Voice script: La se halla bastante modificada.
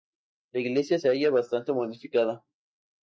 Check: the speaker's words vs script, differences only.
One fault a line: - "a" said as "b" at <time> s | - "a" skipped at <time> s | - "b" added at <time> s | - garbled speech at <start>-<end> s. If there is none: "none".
- "iglesia" added at 0.6 s